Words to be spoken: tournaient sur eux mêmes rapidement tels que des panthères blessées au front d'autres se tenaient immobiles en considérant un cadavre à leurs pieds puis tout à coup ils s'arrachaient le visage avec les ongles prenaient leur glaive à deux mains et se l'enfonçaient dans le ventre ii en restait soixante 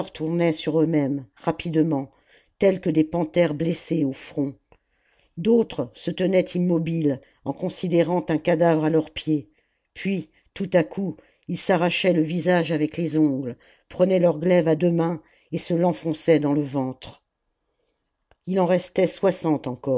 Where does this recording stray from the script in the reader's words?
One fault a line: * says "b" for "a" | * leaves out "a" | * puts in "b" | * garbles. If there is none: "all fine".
all fine